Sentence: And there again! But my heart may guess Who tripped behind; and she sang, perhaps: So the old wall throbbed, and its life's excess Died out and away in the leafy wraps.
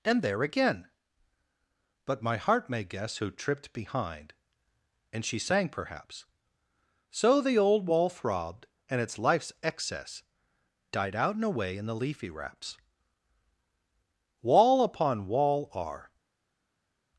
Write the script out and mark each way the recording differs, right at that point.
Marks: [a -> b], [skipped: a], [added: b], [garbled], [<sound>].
And there again! But my heart may guess Who tripped behind; and she sang, perhaps: So the old wall throbbed, and its life's excess Died out and away in the leafy wraps. [added: Wall upon wall are]